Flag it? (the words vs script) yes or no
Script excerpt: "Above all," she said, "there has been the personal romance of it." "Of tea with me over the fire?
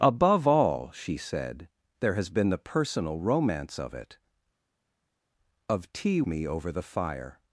yes